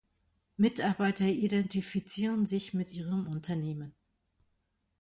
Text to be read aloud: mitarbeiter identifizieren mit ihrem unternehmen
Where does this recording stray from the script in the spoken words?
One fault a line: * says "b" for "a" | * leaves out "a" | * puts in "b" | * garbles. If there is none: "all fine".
* puts in "sich"